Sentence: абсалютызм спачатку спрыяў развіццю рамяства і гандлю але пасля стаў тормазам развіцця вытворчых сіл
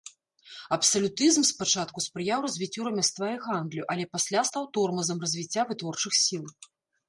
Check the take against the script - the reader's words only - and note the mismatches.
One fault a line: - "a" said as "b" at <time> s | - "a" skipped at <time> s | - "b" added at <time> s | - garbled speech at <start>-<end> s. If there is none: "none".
none